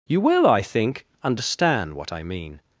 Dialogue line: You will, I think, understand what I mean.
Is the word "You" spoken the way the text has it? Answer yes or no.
yes